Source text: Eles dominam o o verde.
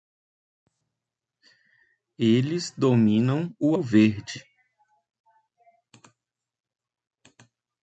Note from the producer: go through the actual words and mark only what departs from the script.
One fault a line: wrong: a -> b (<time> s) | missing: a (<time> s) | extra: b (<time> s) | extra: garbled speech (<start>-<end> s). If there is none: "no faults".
no faults